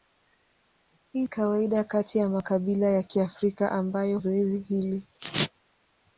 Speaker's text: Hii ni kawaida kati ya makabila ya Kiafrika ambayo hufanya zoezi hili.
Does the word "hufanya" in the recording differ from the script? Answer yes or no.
yes